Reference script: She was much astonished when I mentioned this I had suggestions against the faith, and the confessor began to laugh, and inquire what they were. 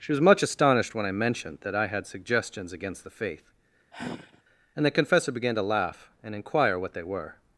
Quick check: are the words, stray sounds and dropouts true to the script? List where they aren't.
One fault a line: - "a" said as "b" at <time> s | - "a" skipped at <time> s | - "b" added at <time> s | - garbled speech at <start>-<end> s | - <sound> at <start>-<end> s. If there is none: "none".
- "this" said as "that" at 1.6 s
- sigh at 3.9-4.4 s